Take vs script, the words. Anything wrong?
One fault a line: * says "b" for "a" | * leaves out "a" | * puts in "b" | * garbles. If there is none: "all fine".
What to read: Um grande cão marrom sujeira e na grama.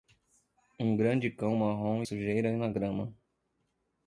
all fine